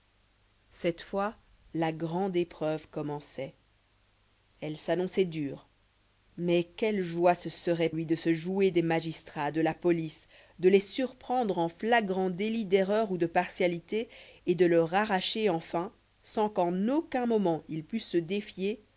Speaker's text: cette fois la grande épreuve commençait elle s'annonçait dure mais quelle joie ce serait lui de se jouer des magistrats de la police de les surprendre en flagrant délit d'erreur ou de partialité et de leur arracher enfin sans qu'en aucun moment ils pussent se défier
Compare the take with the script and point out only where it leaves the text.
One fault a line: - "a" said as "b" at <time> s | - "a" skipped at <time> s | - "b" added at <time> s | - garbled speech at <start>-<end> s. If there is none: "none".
none